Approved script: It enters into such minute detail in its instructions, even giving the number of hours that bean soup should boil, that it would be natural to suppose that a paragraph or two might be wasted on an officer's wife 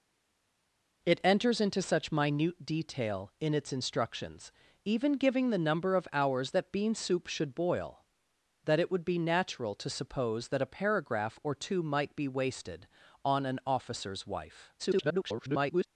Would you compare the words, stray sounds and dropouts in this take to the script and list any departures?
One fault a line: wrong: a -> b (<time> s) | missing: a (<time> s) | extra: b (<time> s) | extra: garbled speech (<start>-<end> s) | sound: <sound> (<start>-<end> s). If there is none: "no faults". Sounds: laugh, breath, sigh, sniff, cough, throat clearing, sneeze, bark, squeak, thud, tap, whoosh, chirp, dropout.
extra: garbled speech (14.8-15.9 s)